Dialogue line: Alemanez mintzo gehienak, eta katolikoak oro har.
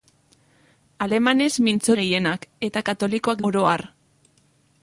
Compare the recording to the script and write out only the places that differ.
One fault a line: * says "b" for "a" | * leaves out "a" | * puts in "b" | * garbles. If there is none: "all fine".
all fine